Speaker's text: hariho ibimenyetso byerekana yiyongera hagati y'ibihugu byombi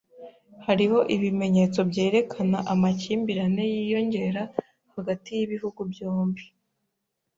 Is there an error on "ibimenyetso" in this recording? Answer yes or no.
no